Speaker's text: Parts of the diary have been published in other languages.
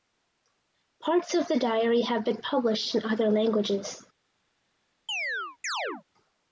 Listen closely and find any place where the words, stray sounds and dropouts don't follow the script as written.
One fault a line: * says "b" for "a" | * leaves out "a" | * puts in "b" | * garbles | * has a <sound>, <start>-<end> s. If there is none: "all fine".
* has a chirp, 5.1-6.0 s